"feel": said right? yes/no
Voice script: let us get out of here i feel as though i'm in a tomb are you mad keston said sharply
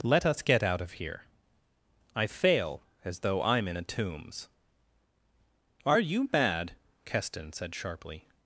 no